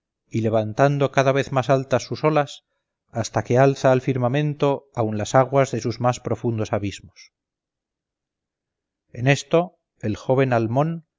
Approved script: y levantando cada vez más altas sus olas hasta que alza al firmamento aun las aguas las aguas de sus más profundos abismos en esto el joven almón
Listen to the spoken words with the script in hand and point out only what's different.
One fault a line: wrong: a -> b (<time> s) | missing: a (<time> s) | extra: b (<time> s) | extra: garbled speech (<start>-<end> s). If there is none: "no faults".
missing: las aguas (5.7 s)